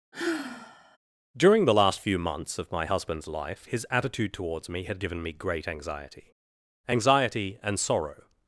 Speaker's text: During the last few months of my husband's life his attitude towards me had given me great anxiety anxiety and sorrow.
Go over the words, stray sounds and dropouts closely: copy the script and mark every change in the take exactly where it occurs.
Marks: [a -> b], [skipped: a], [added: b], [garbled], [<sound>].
[sigh] During the last few months of my husband's life his attitude towards me had given me great anxiety anxiety and sorrow.